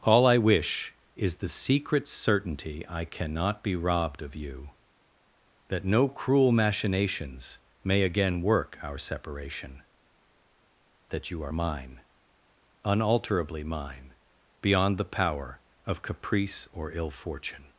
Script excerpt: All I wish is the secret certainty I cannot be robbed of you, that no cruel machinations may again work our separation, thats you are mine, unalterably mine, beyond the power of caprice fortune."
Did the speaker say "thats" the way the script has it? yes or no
no